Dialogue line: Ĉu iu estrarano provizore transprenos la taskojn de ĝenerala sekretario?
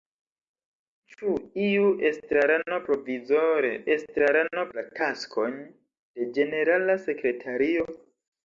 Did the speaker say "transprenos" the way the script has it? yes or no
no